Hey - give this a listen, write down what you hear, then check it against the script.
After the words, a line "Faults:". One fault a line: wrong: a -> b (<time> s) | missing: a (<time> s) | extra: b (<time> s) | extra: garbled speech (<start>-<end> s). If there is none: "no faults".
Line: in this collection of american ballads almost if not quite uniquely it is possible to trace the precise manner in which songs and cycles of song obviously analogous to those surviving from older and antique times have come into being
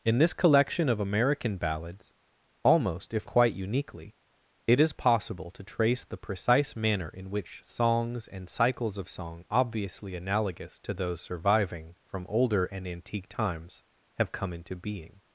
in this collection of american ballads almost if quite uniquely it is possible to trace the precise manner in which songs and cycles of song obviously analogous to those surviving from older and antique times have come into being
Faults:
missing: not (3.3 s)